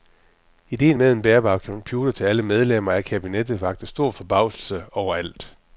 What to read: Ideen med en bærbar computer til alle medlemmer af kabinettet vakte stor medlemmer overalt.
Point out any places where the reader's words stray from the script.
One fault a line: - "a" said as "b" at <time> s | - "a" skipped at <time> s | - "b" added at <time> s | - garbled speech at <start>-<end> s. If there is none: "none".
- "medlemmer" said as "forbavselse" at 4.1 s